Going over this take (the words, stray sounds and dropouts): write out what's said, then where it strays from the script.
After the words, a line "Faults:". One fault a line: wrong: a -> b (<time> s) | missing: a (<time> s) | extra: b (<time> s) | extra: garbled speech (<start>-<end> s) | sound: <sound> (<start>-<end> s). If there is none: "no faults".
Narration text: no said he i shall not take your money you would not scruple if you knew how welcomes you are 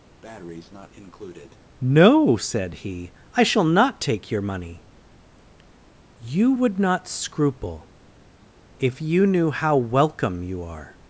no said he i shall not take your money you would not scruple if you knew how welcome you are
Faults:
sound: breath (0.2-1.6 s)
wrong: welcomes -> welcome (9.8 s)